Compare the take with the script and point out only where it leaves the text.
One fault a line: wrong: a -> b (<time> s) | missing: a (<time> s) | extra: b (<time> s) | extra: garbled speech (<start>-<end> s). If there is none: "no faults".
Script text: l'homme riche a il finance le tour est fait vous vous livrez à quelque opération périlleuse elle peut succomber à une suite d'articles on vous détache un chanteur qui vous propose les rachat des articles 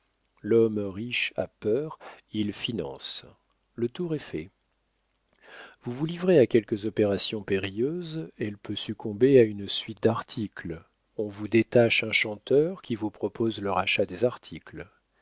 extra: peur (1.5 s)
wrong: les -> le (13.6 s)